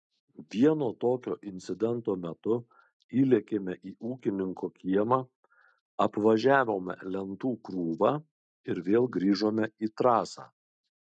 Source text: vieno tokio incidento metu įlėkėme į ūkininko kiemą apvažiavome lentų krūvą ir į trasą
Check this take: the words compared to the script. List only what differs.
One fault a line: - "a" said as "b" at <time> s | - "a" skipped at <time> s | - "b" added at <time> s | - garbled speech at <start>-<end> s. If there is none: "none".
- "vėl grįžome" added at 8.9 s